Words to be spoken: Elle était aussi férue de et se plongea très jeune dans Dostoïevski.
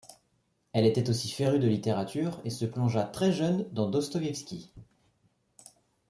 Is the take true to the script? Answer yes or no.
no